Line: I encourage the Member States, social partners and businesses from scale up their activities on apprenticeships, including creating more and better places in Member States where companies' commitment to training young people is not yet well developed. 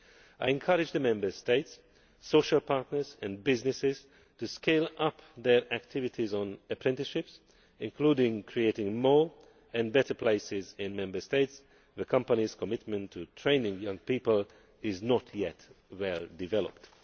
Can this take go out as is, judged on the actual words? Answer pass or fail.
fail